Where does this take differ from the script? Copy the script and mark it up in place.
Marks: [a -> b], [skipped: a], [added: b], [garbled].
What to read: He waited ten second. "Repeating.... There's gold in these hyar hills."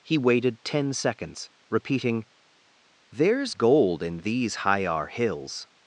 He waited ten [second. -> seconds] "Repeating.... There's gold in these hyar hills."